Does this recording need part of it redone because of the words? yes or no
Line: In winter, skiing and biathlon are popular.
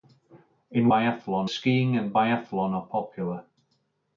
yes